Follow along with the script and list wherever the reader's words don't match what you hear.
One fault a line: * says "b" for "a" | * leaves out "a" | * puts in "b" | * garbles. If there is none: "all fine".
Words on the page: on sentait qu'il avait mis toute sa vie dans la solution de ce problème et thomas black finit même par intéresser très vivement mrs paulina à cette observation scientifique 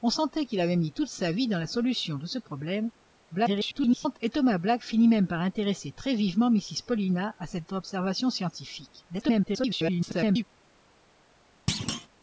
* garbles
* garbles